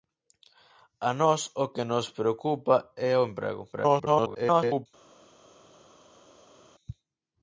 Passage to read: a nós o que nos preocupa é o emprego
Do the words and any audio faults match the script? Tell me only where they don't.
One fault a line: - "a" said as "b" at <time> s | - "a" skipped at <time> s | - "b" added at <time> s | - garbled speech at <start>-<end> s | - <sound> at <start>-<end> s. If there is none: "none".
- garbled speech at 3.7-4.9 s